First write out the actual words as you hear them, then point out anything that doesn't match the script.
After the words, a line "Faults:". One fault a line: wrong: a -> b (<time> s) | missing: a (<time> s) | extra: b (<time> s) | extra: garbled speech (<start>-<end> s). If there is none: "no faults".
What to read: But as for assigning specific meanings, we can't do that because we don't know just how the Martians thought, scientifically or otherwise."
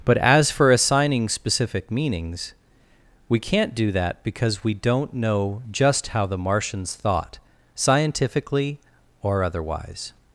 But as for assigning specific meanings, we can't do that because we don't know just how the Martians thought, scientifically or otherwise."
Faults:
no faults